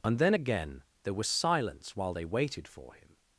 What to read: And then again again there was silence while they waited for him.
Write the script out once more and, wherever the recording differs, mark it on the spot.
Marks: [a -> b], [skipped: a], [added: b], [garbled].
And then again [skipped: again] there was silence while they waited for him.